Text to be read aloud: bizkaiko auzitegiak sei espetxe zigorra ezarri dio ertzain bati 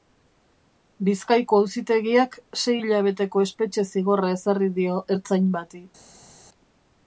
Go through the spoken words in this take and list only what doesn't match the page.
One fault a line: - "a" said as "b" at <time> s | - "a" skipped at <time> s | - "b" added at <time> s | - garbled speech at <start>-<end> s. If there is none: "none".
- "hilabeteko" added at 2.8 s